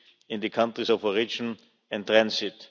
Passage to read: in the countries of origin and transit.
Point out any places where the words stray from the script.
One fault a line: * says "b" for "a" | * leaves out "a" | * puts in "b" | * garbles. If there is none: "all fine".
all fine